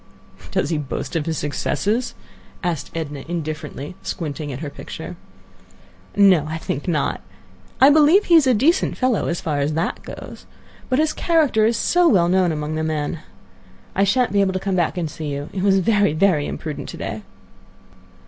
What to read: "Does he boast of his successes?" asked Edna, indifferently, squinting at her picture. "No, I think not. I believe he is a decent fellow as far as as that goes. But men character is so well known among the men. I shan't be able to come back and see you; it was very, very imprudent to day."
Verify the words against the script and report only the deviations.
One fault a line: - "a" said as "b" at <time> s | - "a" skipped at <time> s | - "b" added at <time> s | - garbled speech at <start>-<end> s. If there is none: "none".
- "as" skipped at 9.7 s
- "men" said as "his" at 11.0 s